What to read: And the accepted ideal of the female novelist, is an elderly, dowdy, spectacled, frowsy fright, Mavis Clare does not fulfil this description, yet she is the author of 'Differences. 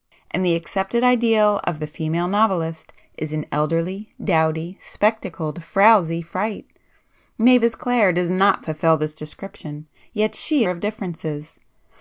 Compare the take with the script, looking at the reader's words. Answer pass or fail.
fail